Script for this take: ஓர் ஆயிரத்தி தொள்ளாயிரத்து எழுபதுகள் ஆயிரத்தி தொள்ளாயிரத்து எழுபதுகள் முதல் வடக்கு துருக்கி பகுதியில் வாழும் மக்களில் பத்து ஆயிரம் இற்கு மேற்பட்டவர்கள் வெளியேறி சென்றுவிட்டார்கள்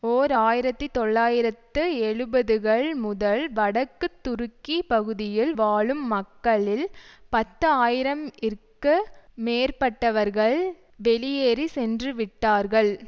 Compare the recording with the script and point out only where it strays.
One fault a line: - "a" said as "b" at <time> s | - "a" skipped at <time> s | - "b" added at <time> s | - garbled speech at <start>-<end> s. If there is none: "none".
- "ஆயிரத்தி தொள்ளாயிரத்து எழுபதுகள்" skipped at 2.9 s